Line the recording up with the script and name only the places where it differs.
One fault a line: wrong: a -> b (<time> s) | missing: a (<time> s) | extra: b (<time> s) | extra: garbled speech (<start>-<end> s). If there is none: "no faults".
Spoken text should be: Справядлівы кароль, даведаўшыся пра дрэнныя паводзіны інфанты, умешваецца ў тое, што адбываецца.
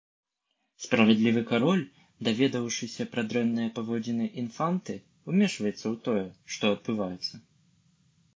no faults